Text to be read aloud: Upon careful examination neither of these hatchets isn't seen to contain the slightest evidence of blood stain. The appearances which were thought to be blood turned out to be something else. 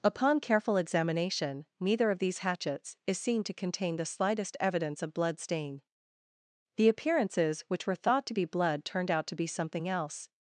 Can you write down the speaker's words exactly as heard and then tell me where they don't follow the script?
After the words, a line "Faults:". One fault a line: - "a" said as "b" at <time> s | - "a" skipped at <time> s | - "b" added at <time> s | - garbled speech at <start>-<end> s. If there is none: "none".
Upon careful examination neither of these hatchets is seen to contain the slightest evidence of blood stain. The appearances which were thought to be blood turned out to be something else.
Faults:
- "isn't" said as "is" at 3.1 s